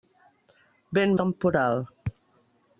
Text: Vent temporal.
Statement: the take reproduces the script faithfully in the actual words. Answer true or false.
true